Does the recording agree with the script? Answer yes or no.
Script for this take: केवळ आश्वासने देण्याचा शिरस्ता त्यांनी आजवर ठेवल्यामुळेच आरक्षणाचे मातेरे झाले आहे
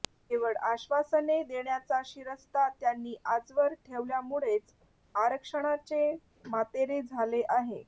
yes